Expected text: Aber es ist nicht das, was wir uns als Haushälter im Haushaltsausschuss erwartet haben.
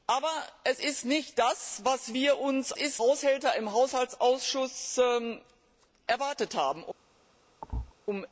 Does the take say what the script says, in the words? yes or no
no